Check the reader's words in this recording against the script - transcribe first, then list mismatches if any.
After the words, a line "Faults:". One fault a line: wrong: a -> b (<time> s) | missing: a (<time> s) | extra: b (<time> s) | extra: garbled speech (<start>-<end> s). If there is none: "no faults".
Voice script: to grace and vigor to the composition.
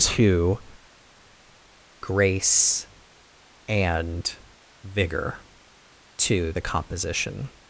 to grace and vigor to the composition.
Faults:
no faults